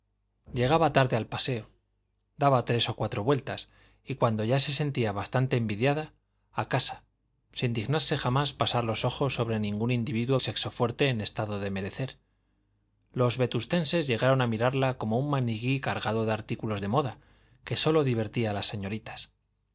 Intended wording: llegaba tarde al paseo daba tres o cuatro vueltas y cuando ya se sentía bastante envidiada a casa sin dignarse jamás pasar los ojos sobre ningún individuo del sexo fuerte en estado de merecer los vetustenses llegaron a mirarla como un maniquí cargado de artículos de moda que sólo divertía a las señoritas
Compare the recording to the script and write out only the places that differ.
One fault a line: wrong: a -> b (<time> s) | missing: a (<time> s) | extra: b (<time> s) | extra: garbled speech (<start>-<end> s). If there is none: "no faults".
missing: del (10.4 s)